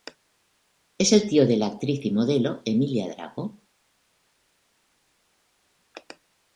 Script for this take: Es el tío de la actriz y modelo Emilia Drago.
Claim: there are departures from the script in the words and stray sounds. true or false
false